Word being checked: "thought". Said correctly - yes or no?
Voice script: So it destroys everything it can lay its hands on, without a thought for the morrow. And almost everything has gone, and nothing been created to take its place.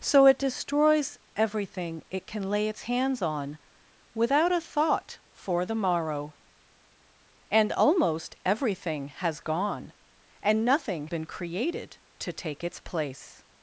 yes